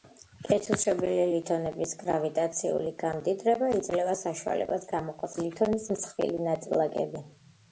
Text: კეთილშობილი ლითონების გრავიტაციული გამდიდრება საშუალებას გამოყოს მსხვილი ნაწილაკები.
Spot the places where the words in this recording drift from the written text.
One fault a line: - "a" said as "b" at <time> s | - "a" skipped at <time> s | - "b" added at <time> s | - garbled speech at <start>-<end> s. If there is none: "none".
- "იძლევა" added at 3.8 s
- "ლითონის" added at 5.4 s